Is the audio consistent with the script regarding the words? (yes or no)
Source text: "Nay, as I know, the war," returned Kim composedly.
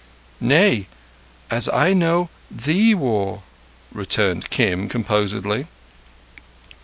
yes